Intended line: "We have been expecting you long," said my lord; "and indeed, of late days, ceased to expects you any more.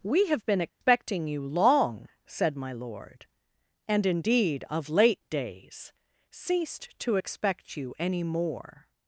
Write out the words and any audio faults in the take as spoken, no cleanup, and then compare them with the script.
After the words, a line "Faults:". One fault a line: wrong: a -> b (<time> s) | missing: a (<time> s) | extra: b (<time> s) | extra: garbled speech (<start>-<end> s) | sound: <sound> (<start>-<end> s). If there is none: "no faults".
"We have been expecting you long," said my lord; "and indeed, of late days, ceased to expect you any more.
Faults:
sound: dropout (0.7-0.8 s)
wrong: expects -> expect (7.1 s)